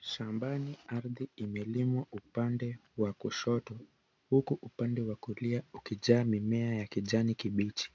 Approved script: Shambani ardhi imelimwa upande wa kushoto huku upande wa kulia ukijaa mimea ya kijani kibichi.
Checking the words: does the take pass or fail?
pass